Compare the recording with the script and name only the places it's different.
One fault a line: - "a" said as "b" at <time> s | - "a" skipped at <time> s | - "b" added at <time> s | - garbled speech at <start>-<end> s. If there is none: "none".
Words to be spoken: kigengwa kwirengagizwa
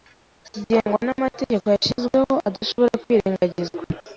- "n'amategeko yashyizweho adashobora" added at 1.1 s